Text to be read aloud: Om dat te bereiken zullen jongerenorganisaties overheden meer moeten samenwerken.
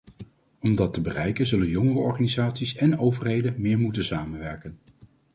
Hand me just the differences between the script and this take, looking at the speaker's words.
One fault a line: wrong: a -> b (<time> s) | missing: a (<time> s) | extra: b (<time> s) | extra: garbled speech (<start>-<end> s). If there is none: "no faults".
extra: en (2.8 s)